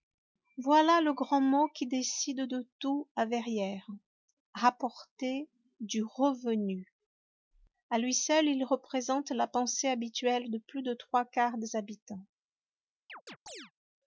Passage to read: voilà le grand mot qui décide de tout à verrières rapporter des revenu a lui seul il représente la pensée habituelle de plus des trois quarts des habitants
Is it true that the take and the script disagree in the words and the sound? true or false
true